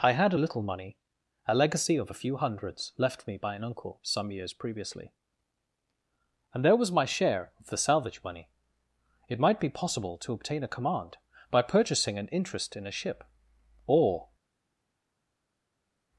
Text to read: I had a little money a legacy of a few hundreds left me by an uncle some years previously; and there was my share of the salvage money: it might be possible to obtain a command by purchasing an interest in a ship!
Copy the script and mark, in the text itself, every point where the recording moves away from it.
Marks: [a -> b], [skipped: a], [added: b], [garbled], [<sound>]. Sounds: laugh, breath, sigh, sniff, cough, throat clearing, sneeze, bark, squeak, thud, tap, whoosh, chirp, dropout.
I had a little money a legacy of a few hundreds left me by an uncle some years previously; and there was my share of the salvage money: it might be possible to obtain a command by purchasing an interest in a ship! [added: Or]